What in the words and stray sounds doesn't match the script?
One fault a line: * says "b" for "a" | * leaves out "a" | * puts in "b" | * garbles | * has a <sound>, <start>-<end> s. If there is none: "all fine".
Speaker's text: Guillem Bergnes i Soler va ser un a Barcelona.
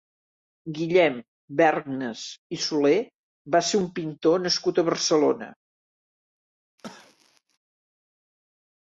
* puts in "pintor nascut"
* has a cough, 6.8-7.6 s